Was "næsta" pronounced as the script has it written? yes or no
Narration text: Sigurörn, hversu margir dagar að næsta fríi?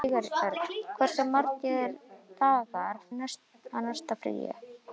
yes